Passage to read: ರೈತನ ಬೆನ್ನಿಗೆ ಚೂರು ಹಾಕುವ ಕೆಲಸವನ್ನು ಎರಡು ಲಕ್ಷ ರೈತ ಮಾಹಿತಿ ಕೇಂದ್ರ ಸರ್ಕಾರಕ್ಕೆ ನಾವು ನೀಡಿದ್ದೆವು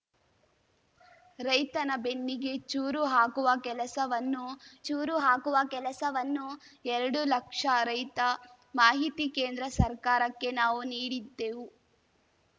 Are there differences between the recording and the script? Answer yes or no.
yes